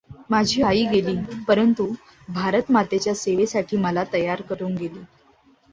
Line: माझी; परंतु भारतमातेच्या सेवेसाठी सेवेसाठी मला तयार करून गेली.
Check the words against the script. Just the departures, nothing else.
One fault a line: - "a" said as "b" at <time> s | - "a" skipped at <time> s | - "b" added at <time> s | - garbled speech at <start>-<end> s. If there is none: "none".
- "आई गेली" added at 0.6 s
- "सेवेसाठी" skipped at 3.8 s